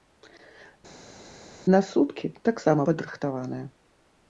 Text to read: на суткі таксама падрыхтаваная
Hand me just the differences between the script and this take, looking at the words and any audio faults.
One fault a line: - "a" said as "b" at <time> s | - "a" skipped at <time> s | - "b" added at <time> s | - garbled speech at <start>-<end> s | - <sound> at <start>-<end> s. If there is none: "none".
none